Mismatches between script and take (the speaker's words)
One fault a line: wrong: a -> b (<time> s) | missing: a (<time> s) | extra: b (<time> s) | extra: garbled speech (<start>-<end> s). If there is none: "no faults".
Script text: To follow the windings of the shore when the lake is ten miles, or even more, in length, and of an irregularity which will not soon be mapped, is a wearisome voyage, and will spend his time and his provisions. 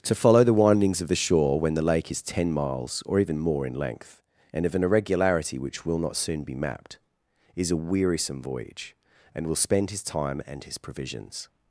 no faults